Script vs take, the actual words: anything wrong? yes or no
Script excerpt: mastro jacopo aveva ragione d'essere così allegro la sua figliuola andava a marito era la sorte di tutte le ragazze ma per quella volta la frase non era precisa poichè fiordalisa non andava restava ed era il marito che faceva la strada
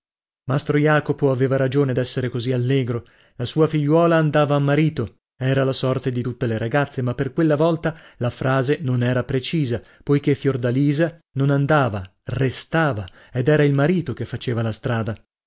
no